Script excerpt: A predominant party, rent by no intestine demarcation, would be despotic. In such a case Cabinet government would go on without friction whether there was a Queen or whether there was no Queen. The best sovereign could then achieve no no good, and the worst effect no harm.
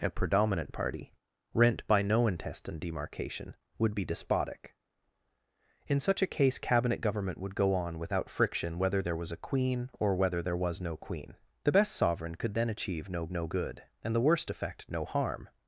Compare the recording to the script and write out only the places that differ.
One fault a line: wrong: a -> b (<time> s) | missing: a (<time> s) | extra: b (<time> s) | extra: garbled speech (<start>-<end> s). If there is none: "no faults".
no faults